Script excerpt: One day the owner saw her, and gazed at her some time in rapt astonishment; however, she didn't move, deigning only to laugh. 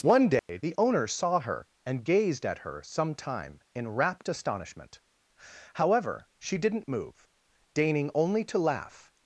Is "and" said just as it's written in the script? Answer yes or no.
yes